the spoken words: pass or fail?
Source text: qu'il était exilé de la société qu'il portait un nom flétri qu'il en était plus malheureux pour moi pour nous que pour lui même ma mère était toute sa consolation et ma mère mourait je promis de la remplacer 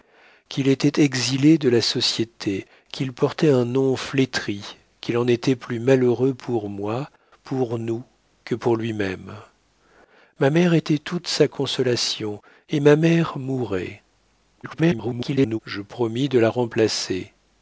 fail